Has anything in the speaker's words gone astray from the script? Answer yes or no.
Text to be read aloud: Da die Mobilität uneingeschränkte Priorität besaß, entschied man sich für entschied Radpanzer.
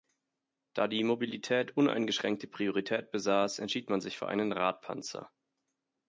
yes